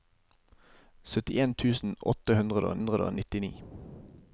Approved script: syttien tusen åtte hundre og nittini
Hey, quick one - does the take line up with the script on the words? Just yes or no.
no